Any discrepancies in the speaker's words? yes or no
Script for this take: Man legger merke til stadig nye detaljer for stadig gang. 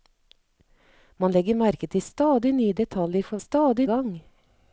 no